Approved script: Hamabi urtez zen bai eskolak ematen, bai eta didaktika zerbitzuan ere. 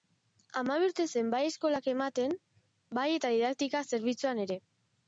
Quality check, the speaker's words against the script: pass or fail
pass